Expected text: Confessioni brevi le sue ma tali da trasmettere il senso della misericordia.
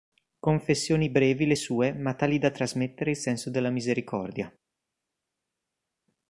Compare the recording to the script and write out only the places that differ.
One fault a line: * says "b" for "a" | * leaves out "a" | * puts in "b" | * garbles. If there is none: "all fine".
all fine